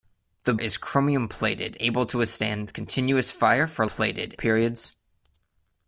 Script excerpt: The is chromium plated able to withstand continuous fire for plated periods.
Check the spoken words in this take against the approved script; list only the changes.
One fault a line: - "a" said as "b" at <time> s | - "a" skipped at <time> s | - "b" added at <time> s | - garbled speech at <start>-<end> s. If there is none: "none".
none